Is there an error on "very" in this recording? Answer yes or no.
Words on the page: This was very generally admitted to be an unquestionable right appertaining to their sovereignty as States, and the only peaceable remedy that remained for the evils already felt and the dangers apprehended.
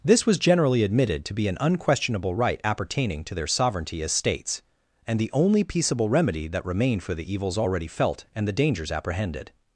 yes